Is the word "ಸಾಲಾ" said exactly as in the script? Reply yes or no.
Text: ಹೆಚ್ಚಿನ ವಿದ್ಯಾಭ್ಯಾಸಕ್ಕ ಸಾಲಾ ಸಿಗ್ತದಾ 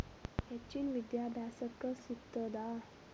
no